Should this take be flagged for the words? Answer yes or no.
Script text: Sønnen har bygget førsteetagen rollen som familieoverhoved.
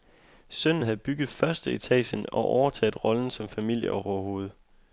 yes